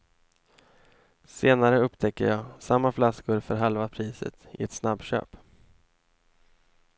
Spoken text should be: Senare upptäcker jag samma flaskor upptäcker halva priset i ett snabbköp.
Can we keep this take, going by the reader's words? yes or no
no